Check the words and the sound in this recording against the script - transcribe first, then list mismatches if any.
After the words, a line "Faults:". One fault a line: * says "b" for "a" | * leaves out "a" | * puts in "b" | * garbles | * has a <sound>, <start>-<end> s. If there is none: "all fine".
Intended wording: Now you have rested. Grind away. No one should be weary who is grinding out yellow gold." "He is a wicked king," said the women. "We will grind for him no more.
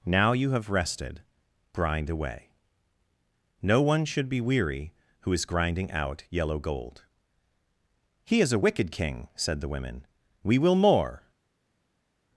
Now you have rested. Grind away. No one should be weary who is grinding out yellow gold." "He is a wicked king," said the women. "We will more.
Faults:
* leaves out "grind for him no"